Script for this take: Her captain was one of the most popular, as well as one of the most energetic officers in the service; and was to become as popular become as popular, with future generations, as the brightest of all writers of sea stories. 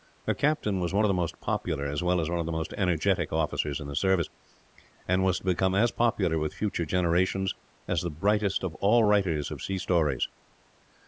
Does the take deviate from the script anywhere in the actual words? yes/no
yes